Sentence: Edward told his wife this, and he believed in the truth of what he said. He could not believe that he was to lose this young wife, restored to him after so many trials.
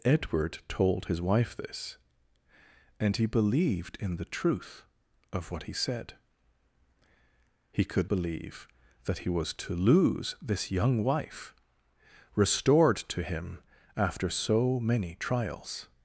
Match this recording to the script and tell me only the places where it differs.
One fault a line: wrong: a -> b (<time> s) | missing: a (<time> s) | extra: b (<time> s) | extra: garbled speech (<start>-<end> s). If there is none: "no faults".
missing: not (8.1 s)